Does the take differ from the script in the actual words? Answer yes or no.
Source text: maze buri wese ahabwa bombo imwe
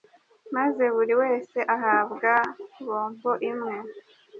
no